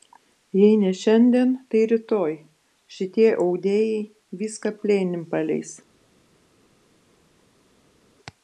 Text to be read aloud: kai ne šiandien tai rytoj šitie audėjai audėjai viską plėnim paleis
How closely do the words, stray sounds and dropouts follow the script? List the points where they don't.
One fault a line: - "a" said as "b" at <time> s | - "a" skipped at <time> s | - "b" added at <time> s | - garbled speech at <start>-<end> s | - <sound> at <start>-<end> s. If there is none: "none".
- "kai" said as "jei" at 0.6 s
- "audėjai" skipped at 4.0 s